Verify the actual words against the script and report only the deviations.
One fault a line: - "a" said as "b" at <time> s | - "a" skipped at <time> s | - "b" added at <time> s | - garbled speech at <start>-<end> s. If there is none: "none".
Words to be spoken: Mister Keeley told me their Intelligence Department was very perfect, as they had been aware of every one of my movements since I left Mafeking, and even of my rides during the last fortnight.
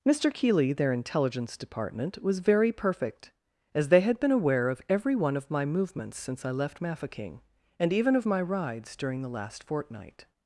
- "told me" skipped at 0.7 s